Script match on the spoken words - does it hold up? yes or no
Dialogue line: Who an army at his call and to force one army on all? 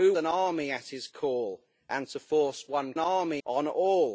yes